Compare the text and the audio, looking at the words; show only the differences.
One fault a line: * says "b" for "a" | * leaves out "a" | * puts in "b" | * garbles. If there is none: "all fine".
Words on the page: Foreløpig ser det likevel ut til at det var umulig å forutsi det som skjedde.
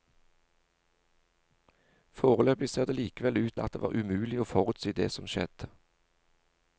* leaves out "til"